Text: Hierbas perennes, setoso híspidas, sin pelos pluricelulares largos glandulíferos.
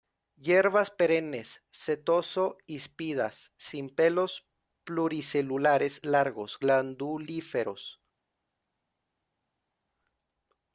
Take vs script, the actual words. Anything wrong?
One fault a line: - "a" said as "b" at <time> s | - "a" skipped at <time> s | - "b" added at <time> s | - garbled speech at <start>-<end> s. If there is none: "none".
none